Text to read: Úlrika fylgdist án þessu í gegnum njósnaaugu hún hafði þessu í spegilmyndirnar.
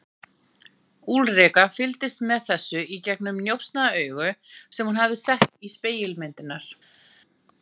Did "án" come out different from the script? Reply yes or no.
yes